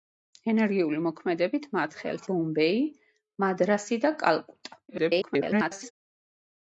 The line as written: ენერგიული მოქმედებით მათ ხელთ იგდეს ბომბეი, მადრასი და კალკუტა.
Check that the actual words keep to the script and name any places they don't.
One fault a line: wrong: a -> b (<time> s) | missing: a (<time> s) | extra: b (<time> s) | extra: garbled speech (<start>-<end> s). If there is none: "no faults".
missing: იგდეს (2.2 s)
extra: garbled speech (4.9-5.9 s)